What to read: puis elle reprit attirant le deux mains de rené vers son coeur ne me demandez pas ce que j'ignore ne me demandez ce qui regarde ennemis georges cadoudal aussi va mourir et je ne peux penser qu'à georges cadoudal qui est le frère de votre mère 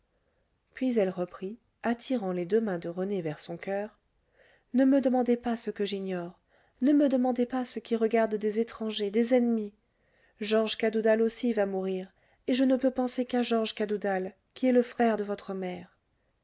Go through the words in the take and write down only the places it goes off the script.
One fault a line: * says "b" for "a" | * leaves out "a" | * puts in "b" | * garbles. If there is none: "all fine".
* says "les" for "le"
* puts in "pas"
* puts in "des étrangers des"